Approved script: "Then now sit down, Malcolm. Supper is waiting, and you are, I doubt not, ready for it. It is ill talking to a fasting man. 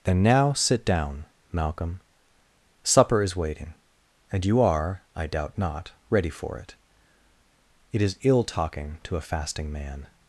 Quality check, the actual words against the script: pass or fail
pass